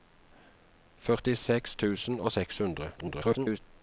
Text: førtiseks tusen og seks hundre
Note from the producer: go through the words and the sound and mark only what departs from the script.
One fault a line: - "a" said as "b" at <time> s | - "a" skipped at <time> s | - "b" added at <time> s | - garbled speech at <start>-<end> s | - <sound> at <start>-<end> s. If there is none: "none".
- garbled speech at 3.0-3.6 s